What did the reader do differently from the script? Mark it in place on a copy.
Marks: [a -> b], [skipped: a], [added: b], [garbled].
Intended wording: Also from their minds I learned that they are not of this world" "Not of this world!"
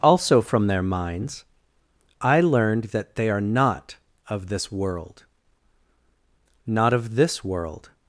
Also from their minds I learned that they are not of this world" "Not of this world!"